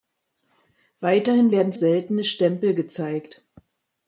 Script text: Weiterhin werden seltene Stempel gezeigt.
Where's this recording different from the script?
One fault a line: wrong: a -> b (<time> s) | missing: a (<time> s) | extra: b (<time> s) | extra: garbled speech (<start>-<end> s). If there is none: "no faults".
no faults